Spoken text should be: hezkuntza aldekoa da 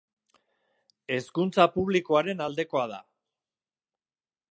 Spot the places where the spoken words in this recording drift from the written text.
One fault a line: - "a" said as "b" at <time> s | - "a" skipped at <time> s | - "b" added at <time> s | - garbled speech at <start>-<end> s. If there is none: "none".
- "publikoaren" added at 1.8 s